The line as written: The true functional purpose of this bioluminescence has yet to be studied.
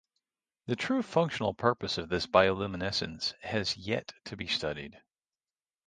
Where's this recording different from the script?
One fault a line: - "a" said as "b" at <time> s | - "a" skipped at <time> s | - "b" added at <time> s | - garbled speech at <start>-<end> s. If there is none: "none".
none